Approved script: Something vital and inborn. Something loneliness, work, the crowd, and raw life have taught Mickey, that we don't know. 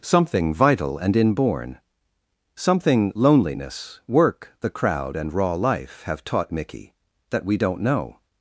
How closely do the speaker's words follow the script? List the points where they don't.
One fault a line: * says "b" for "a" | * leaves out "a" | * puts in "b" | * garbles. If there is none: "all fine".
all fine